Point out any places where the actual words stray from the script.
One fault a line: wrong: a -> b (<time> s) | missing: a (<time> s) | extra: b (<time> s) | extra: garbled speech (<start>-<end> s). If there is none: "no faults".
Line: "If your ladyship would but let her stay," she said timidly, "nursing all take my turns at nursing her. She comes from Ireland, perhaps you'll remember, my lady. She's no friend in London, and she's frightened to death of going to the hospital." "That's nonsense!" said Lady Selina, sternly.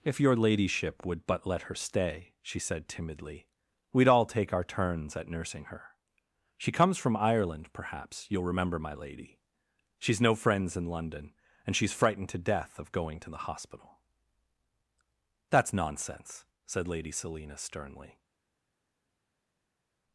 wrong: nursing -> we'd (3.9 s)
wrong: my -> our (4.5 s)
wrong: friend -> friends (10.3 s)